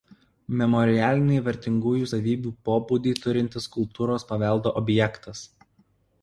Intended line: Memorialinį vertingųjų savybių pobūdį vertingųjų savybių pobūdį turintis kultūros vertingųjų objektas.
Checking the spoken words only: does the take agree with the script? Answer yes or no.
no